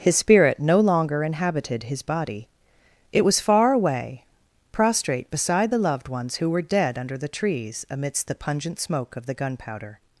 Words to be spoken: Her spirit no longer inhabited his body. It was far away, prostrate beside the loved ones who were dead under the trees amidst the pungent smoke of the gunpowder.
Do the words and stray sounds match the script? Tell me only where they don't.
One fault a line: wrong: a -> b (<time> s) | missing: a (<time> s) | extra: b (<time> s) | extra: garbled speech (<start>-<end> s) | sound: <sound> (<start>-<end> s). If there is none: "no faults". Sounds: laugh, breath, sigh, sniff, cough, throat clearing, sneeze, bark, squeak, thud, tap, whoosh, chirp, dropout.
wrong: Her -> His (0.0 s)